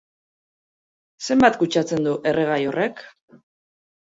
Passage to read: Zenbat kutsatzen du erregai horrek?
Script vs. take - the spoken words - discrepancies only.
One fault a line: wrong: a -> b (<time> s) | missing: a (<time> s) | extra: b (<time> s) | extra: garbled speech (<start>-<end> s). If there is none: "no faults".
no faults